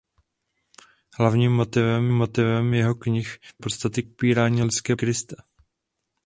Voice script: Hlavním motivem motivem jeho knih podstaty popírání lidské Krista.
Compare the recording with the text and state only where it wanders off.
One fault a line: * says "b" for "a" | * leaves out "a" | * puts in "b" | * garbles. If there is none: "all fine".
all fine